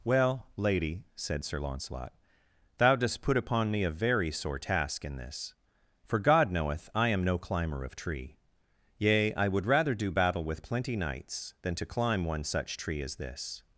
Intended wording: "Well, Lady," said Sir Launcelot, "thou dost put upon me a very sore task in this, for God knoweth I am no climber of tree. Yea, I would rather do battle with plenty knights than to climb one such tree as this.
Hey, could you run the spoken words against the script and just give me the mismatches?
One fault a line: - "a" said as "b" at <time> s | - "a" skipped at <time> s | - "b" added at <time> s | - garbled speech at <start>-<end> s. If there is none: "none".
none